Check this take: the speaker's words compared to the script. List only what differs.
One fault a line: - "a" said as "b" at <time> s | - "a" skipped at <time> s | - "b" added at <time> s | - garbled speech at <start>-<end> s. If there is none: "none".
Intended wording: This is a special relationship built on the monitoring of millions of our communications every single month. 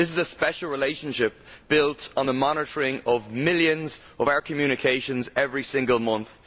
none